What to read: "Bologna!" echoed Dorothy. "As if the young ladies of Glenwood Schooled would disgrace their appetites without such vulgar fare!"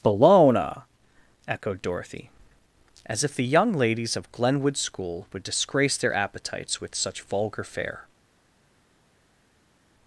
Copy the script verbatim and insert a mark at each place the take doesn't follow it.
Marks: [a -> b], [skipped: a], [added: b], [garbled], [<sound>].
"Bologna!" echoed Dorothy. "As if the young ladies of Glenwood [Schooled -> School] would disgrace their appetites [without -> with] such vulgar fare!"